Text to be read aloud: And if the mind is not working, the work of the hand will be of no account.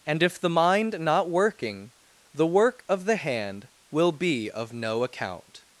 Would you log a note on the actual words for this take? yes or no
yes